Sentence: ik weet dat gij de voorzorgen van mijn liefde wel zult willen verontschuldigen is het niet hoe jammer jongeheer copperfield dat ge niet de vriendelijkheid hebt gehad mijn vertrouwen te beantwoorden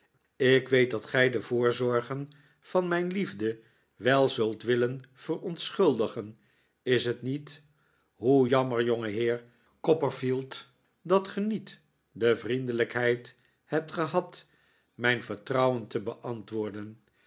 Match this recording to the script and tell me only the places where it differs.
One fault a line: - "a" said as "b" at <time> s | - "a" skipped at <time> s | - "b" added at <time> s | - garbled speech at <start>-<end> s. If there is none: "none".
none